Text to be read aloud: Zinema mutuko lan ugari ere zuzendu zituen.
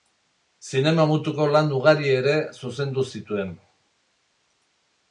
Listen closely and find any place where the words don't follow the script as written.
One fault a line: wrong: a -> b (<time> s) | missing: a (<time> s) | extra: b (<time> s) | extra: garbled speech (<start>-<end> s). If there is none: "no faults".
no faults